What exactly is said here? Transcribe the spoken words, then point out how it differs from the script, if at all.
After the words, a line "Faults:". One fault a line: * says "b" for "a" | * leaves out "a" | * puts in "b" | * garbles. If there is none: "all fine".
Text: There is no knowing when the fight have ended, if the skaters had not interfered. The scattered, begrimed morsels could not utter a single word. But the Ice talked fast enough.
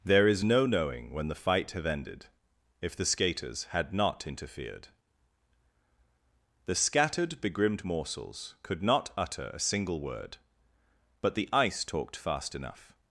There is no knowing when the fight have ended, if the skaters had not interfered. The scattered, begrimed morsels could not utter a single word. But the Ice talked fast enough.
Faults:
all fine